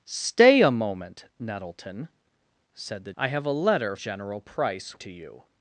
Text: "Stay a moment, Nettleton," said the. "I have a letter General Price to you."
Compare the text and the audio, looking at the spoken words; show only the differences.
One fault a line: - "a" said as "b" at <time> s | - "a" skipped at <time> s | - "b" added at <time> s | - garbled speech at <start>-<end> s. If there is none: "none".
none